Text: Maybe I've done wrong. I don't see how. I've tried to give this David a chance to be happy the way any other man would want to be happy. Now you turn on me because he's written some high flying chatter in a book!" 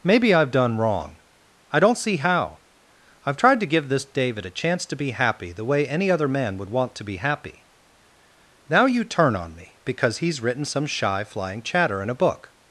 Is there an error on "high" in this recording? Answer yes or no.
yes